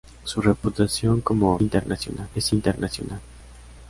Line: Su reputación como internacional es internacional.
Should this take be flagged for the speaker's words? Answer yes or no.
no